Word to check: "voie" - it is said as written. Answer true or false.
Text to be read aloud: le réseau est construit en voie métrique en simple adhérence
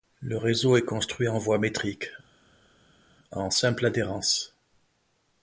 true